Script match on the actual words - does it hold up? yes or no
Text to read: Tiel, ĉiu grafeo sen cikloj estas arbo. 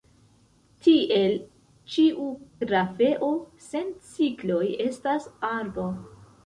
yes